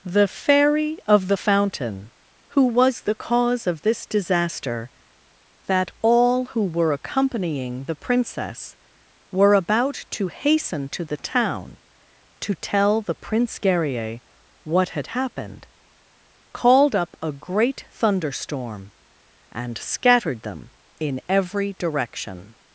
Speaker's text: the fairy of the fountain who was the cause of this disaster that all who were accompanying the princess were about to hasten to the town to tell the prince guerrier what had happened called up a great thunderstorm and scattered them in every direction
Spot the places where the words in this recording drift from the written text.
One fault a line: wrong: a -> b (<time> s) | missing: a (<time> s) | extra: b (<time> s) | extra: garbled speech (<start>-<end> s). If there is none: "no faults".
no faults